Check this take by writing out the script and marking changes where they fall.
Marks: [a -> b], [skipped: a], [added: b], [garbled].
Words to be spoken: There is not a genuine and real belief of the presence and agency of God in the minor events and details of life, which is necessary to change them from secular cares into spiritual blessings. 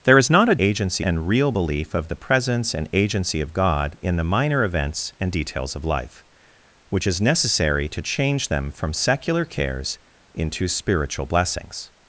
There is not a [genuine -> agency] and real belief of the presence and agency of God in the minor events and details of life, which is necessary to change them from secular cares into spiritual blessings.